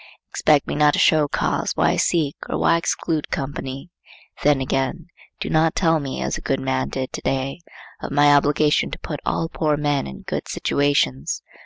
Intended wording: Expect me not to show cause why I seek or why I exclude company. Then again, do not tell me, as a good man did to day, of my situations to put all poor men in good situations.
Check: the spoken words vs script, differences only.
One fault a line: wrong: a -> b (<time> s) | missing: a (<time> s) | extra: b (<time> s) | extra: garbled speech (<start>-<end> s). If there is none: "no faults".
wrong: situations -> obligation (8.3 s)